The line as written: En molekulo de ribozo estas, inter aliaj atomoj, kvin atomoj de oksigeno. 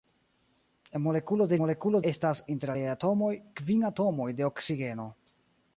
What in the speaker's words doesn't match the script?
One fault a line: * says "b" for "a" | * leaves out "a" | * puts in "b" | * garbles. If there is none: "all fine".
* says "molekulo" for "ribozo"